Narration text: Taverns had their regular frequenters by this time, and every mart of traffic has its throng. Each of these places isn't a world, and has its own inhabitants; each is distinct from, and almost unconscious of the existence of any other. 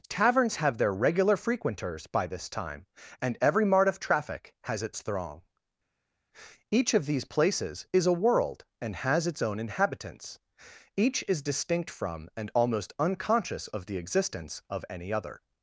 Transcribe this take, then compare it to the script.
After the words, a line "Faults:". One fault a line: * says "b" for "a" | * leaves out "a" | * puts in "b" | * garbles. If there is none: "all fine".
Taverns have their regular frequenters by this time, and every mart of traffic has its throng. Each of these places is a world, and has its own inhabitants; each is distinct from, and almost unconscious of the existence of any other.
Faults:
* says "have" for "had"
* says "is" for "isn't"